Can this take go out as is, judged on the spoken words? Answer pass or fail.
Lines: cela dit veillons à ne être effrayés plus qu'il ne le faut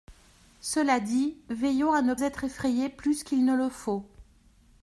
pass